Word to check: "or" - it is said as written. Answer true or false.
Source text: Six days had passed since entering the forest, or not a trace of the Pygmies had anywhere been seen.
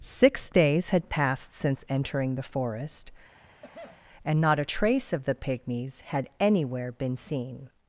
false